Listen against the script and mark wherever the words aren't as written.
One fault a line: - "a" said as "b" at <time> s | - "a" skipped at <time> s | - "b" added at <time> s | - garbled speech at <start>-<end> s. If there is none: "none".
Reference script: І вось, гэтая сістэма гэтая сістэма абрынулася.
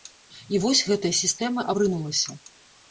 - "гэтая сістэма" skipped at 1.7 s